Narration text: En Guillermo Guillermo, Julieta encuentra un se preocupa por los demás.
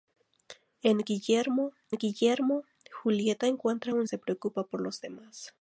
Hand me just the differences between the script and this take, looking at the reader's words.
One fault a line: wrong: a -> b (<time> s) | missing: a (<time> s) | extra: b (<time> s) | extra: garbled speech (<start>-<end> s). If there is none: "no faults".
no faults